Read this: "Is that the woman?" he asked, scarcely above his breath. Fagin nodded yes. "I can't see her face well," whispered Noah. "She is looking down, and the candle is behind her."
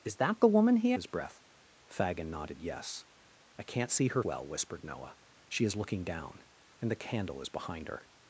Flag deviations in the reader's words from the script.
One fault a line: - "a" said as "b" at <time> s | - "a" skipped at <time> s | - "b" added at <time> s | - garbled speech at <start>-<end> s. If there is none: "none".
- "asked scarcely above" skipped at 0.9 s
- "face" skipped at 4.2 s